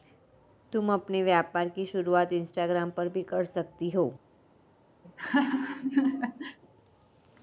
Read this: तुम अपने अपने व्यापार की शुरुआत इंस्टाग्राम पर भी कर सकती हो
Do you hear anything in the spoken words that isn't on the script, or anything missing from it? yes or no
yes